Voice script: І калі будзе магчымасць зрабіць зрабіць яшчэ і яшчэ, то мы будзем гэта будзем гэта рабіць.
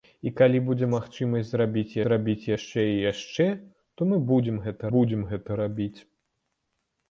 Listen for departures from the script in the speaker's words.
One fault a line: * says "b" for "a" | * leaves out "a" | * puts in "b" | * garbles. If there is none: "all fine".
all fine